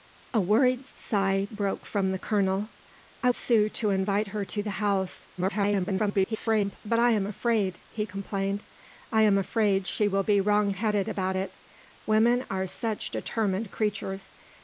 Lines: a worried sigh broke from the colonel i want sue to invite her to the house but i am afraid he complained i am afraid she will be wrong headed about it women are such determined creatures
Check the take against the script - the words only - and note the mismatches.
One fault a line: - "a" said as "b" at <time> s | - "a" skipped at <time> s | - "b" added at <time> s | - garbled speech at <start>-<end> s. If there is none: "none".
- "want" skipped at 3.3 s
- garbled speech at 5.4-6.8 s